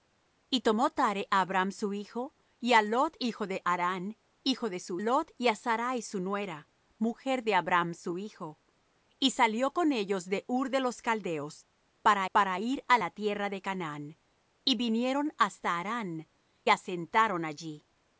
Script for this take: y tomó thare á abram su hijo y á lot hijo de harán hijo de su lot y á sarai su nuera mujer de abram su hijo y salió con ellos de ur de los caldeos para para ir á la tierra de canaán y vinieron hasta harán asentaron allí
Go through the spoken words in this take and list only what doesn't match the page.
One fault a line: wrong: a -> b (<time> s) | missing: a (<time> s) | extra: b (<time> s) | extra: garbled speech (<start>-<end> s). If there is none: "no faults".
no faults